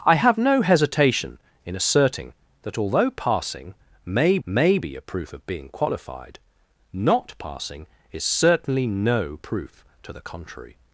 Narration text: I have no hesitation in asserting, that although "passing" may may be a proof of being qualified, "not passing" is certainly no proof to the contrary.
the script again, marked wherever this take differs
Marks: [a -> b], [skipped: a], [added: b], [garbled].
I have no hesitation in asserting, that although "passing" may may be a proof of being qualified, "not passing" is certainly no proof to the contrary.